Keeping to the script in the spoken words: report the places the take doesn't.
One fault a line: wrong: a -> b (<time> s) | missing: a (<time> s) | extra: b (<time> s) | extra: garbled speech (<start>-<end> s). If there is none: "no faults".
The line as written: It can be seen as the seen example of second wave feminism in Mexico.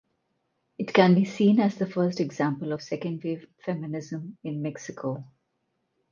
wrong: seen -> first (1.9 s)